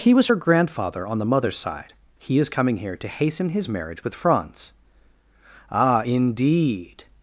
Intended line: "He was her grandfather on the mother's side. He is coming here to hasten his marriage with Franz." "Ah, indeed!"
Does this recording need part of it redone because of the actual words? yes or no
no